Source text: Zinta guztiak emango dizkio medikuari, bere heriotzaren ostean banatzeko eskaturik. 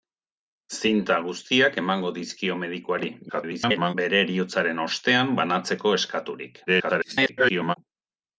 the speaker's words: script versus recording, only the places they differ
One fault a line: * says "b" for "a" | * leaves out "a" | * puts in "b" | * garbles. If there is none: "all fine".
* garbles
* garbles